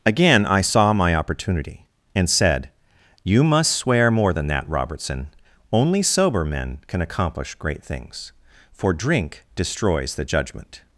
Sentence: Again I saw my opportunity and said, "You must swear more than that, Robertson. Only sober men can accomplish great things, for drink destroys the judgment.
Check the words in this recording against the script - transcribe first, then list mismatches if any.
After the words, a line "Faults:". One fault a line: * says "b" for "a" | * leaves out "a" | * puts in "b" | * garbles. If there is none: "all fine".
Again I saw my opportunity and said, "You must swear more than that, Robertson. Only sober men can accomplish great things, for drink destroys the judgment.
Faults:
all fine